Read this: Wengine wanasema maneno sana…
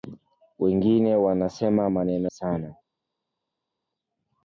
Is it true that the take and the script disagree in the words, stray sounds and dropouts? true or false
false